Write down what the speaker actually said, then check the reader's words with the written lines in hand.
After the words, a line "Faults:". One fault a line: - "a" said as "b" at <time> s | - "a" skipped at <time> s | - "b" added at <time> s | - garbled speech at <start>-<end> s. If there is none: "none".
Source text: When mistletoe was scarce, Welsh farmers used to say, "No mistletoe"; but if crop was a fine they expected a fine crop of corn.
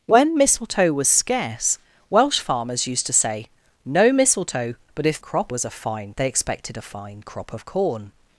When mistletoe was scarce, Welsh farmers used to say, "No mistletoe"; but if crop was a fine they expected a fine crop of corn.
Faults:
none